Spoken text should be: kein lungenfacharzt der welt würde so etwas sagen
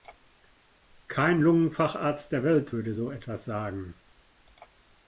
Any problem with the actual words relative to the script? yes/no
no